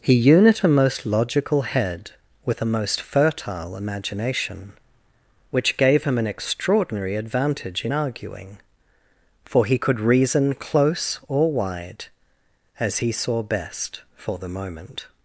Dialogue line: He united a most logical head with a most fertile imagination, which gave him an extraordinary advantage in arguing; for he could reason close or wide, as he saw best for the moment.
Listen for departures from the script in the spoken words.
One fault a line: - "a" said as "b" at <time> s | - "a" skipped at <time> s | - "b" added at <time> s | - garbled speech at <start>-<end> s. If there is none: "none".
- "united" said as "unit" at 0.1 s